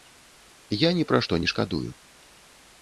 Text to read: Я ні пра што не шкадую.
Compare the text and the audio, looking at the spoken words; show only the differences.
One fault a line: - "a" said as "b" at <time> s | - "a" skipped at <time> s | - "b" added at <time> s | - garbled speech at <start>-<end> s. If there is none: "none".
none